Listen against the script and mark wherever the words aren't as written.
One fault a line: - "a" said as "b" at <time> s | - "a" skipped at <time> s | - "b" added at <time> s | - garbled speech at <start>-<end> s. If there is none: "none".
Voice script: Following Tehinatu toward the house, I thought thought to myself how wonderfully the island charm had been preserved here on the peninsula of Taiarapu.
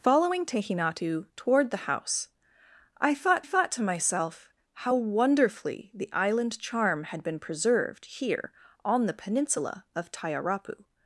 none